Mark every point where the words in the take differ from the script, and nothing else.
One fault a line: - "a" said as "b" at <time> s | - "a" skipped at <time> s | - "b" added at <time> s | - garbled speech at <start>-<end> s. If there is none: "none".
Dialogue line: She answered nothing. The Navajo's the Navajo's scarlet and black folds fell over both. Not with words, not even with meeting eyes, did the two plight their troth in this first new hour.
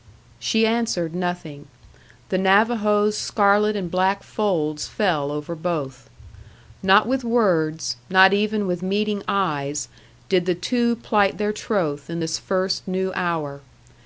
- "the Navajo's" skipped at 3.1 s